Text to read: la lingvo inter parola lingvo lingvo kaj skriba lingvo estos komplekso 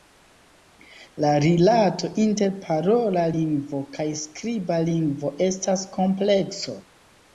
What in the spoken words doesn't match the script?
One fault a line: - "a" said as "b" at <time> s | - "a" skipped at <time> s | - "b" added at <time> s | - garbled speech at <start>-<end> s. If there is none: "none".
- "lingvo" said as "rilato" at 1.4 s
- "lingvo" skipped at 3.8 s
- "estos" said as "estas" at 5.5 s